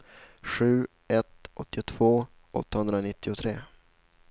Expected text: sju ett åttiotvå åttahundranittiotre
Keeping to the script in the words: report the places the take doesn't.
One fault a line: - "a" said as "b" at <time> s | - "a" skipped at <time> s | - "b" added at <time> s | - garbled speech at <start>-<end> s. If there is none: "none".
none